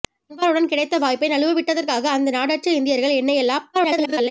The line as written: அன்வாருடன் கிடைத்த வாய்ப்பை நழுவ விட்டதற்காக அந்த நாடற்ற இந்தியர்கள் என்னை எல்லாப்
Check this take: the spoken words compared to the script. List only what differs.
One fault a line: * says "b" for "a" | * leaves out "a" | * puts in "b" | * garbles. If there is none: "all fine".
* garbles